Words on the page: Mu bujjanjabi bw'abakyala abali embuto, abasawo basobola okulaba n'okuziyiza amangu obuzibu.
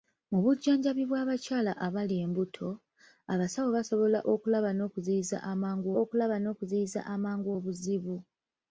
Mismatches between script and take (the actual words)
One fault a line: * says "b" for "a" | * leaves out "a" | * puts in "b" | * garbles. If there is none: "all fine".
* puts in "okulaba n'okuziyiza amangu"